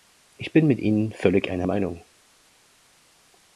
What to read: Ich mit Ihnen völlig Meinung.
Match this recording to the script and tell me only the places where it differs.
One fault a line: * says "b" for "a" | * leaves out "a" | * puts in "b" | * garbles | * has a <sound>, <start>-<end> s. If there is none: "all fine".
* puts in "bin"
* puts in "einer"